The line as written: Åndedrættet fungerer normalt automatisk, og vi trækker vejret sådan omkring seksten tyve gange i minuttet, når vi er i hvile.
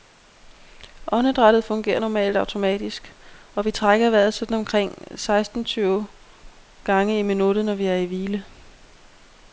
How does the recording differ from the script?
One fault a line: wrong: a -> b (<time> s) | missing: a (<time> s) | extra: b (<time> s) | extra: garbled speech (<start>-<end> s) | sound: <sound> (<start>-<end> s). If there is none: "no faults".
no faults